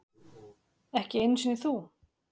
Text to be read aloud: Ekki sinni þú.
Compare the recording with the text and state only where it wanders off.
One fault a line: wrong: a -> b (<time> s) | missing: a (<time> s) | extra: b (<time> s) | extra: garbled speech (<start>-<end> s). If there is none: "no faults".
extra: einu (1.2 s)